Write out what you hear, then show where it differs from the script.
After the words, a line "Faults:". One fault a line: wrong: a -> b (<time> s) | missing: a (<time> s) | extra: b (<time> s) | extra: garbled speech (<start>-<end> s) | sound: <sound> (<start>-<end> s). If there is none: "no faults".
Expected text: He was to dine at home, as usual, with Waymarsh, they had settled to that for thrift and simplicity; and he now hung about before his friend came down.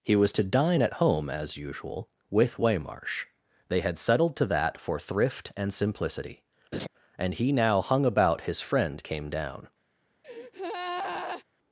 He was to dine at home, as usual, with Waymarsh, they had settled to that for thrift and simplicity; and he now hung about his friend came down.
Faults:
sound: laugh (6.7-6.9 s)
missing: before (8.4 s)
sound: breath (10.2-11.4 s)